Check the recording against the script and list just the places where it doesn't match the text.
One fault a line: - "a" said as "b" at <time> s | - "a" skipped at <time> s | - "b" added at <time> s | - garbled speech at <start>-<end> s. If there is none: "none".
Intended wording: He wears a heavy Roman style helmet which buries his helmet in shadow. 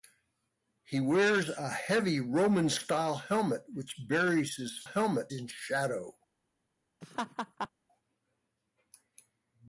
none